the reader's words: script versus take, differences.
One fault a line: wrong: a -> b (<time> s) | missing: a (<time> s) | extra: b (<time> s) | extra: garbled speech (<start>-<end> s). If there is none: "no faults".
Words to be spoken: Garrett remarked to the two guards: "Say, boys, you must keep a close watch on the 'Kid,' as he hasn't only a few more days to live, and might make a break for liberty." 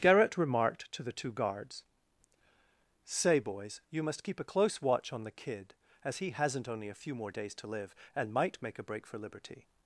no faults